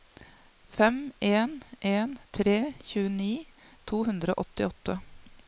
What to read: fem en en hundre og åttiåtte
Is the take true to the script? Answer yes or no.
no